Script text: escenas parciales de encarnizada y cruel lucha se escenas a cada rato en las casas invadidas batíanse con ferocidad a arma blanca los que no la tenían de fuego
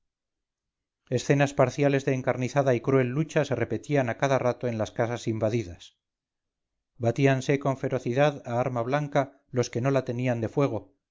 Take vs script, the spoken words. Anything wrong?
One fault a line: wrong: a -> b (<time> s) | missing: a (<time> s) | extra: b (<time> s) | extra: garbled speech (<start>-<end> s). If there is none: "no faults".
wrong: escenas -> repetían (3.5 s)